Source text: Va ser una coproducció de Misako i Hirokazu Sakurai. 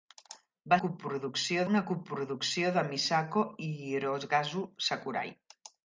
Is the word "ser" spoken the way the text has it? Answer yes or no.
no